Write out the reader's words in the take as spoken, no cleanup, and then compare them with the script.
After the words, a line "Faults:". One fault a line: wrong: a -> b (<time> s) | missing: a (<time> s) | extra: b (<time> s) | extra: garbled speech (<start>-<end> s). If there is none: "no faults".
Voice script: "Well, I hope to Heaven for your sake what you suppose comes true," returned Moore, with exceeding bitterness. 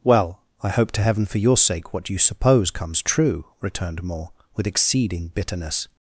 "Well, I hope to Heaven for your sake what you suppose comes true," returned Moore, with exceeding bitterness.
Faults:
no faults